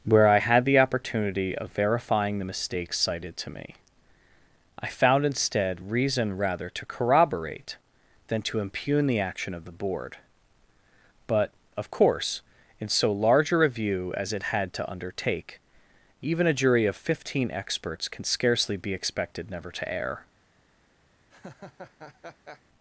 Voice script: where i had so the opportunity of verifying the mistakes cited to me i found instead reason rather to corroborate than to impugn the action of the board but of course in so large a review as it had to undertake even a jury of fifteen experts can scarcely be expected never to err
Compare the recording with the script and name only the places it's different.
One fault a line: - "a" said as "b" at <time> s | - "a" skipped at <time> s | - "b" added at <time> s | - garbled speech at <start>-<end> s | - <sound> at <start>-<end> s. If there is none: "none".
- "so" skipped at 0.6 s
- laugh at 21.3-22.6 s